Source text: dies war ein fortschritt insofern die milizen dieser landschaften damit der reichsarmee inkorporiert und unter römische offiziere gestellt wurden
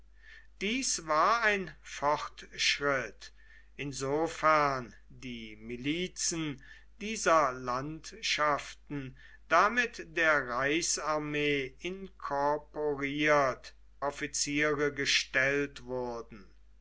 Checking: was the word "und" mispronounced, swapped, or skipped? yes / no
yes